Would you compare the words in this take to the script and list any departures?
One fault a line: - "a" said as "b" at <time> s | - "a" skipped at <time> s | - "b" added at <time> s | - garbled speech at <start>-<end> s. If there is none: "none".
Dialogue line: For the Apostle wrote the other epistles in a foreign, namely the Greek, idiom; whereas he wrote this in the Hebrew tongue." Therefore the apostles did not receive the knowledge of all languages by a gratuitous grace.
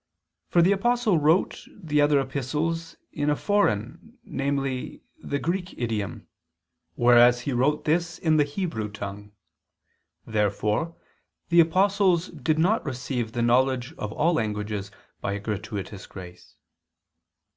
none